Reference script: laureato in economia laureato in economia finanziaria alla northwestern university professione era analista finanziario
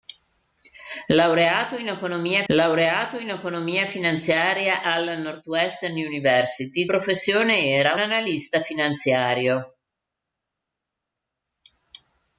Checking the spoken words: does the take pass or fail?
pass